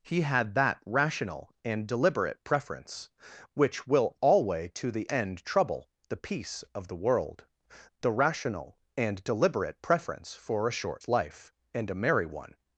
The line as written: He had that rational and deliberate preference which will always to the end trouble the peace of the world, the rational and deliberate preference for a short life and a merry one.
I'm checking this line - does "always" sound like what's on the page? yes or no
no